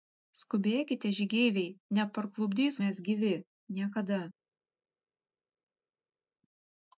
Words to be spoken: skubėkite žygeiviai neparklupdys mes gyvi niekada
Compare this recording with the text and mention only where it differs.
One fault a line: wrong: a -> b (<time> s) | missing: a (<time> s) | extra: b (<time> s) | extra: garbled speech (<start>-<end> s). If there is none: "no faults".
no faults